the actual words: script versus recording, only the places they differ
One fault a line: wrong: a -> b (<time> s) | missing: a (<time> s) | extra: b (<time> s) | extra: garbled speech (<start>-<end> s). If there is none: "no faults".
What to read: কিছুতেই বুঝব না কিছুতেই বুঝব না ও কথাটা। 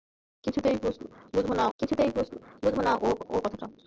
no faults